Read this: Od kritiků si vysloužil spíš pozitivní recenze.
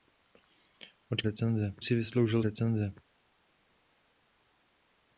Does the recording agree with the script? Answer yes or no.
no